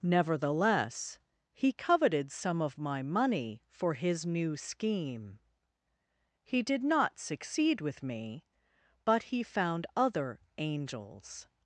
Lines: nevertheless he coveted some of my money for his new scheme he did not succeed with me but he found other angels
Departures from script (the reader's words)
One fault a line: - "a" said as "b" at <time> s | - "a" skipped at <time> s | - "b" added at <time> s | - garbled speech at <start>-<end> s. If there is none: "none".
none